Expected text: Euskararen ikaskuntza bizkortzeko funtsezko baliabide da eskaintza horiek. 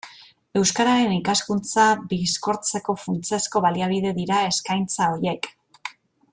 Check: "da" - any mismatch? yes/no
yes